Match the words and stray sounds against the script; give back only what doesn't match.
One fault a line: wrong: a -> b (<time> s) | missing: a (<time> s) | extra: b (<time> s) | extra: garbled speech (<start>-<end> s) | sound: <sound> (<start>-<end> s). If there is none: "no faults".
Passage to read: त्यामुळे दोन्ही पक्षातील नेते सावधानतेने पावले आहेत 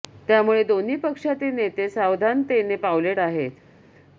no faults